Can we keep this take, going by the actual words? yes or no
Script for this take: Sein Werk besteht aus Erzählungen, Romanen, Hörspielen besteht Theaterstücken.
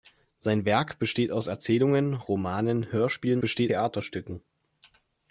yes